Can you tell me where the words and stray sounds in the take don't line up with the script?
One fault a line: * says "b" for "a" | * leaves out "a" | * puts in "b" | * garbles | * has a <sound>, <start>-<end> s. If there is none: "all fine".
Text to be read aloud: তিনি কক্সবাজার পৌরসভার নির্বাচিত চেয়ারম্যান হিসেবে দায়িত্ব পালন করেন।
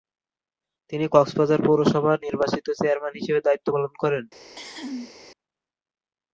* has a cough, 4.4-5.1 s